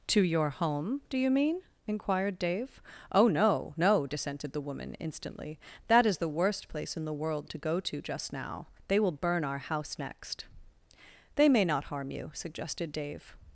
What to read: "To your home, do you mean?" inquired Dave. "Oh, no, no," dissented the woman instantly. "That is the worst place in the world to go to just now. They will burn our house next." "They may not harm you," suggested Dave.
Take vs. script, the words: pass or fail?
pass